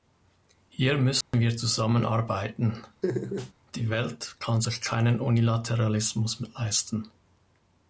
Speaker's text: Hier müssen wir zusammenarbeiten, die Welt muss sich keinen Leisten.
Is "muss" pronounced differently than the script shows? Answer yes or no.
yes